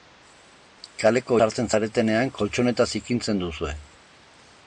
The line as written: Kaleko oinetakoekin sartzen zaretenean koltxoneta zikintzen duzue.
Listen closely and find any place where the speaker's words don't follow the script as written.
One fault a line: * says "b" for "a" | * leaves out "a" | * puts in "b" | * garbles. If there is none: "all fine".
* leaves out "oinetakoekin"